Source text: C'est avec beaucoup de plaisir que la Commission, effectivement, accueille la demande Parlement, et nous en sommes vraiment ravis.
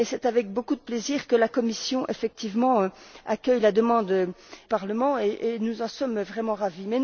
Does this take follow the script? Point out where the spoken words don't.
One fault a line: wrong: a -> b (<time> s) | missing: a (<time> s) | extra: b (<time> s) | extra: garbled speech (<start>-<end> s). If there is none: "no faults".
no faults